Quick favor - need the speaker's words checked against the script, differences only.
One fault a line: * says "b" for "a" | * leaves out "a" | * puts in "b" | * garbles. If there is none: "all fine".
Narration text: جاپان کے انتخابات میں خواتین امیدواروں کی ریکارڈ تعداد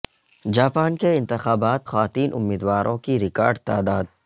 * leaves out "میں"